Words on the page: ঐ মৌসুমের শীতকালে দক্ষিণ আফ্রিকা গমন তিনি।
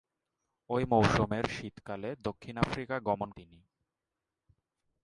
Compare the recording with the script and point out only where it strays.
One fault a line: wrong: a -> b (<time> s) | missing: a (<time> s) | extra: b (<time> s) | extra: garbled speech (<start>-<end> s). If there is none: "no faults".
no faults